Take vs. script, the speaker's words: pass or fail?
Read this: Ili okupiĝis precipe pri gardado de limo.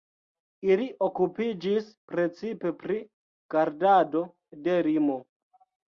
pass